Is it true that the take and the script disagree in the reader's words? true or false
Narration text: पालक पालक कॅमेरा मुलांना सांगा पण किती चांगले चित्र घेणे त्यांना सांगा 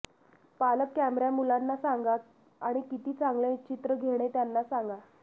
true